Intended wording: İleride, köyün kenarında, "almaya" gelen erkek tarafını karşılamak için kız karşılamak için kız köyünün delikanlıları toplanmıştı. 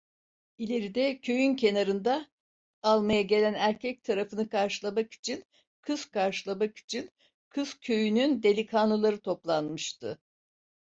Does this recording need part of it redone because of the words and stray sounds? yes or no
no